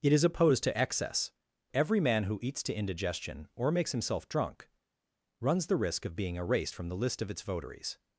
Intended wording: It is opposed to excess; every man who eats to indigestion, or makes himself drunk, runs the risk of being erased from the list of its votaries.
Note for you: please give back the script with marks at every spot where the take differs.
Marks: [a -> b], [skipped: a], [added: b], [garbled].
It is opposed to excess; every man who eats to indigestion, or makes himself drunk, runs the risk of being erased from the list of its votaries.